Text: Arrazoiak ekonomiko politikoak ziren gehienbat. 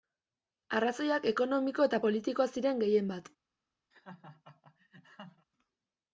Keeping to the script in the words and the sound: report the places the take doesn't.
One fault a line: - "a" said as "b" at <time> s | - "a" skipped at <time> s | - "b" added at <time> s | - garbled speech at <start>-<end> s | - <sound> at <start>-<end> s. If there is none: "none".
- "eta" added at 1.9 s
- laugh at 3.9-5.5 s